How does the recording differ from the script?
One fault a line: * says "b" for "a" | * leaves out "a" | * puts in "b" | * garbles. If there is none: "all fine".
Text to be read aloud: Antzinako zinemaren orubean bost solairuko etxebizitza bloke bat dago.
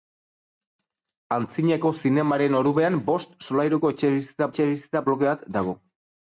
* puts in "etxebizitza"